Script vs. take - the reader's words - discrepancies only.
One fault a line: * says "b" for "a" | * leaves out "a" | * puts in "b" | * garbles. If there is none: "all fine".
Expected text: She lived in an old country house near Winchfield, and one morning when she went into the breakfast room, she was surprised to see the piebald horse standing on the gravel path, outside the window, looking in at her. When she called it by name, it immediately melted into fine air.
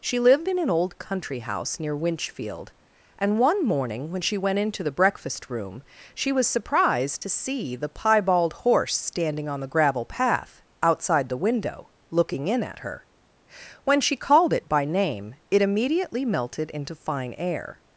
all fine